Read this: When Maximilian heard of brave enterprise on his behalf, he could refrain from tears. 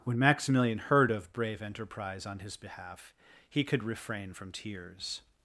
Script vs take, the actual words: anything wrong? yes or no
no